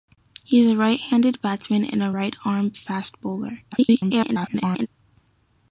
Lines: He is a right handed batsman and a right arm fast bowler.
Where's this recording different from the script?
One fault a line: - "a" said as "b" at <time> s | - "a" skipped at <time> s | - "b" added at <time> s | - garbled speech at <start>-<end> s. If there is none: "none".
- garbled speech at 3.7-4.9 s